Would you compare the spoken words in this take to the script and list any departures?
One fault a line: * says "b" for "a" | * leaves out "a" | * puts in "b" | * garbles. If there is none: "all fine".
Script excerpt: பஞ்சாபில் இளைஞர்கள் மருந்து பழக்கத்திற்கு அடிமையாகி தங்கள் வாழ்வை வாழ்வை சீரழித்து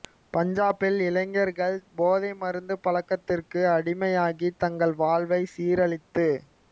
* puts in "போதை"
* leaves out "வாழ்வை"